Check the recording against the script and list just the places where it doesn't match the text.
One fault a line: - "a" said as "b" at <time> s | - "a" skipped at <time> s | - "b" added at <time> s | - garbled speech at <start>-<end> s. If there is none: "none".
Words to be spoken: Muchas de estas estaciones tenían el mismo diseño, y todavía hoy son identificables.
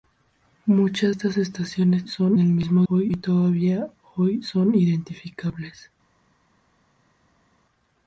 - "de" skipped at 1.1 s
- "tenían" said as "son" at 2.1 s
- "diseño" said as "hoy" at 2.9 s